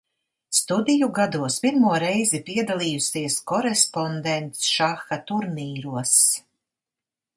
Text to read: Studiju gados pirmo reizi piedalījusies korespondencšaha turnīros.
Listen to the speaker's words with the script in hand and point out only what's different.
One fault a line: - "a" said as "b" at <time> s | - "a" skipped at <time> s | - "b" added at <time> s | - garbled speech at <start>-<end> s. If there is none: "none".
none